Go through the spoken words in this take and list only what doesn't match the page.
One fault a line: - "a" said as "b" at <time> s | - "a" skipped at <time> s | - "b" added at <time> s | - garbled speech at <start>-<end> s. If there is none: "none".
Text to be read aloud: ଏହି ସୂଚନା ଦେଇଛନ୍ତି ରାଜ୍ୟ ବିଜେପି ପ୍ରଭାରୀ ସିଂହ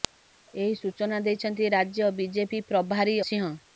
none